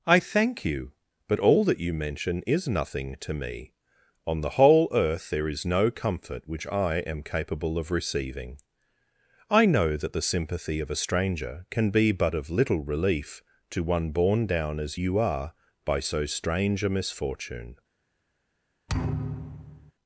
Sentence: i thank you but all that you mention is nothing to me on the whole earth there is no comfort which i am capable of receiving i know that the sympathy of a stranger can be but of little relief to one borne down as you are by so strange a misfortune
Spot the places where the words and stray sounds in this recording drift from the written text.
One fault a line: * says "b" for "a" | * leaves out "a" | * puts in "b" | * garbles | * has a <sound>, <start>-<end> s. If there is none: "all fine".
* has a thud, 18.9-19.9 s